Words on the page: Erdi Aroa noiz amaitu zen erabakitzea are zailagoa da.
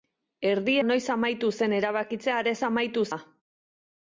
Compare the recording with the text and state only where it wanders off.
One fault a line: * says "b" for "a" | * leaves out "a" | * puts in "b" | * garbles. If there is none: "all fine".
* leaves out "Aroa"
* says "amaitu" for "zailagoa"